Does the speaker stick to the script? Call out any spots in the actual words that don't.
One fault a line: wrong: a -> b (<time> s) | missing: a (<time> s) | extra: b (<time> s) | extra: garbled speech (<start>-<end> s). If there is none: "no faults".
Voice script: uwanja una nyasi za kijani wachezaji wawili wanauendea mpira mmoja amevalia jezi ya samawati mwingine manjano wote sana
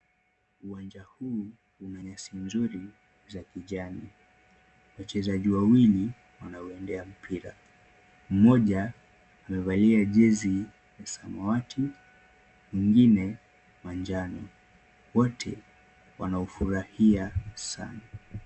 extra: huu (1.0 s)
extra: nzuri (2.4 s)
extra: wanaufurahia (16.2 s)